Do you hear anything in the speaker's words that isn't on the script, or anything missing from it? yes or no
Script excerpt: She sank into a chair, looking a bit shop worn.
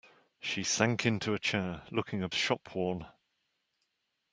yes